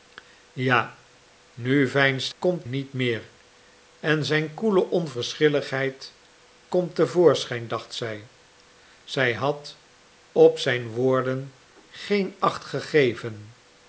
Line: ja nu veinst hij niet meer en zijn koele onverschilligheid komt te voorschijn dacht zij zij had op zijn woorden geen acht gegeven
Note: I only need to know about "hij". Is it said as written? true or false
false